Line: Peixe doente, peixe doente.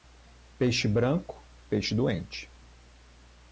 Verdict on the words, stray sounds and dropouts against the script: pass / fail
fail